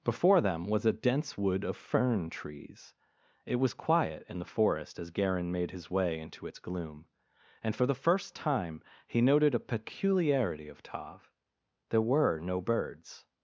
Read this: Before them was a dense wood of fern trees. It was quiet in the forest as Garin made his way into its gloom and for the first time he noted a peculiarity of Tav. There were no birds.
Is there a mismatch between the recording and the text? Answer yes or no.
no